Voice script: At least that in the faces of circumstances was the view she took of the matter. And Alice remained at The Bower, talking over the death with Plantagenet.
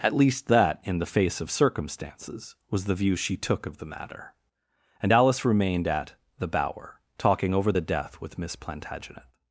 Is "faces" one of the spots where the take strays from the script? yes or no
yes